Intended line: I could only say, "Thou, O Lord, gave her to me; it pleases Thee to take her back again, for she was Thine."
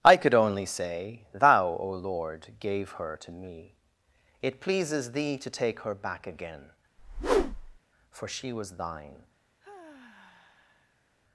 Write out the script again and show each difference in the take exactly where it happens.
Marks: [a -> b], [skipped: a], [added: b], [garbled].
I could only say, "Thou, O Lord, gave her to me; it pleases Thee to take her back again, for she was Thine."